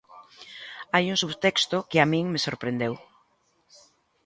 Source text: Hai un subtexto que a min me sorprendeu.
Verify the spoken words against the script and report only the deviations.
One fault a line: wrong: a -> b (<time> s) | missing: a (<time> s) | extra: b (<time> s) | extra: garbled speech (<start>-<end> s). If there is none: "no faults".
no faults